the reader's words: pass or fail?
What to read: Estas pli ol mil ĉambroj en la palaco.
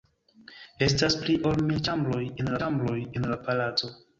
fail